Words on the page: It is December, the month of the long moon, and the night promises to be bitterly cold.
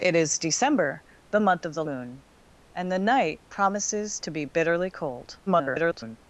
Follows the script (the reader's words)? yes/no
no